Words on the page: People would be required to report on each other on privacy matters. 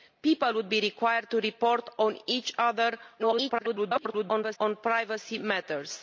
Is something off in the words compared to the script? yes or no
yes